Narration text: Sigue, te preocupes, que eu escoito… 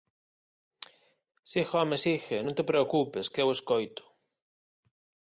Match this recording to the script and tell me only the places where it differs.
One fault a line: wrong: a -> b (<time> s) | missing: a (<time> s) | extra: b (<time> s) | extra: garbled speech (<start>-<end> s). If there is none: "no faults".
extra: home sigue Non (1.7 s)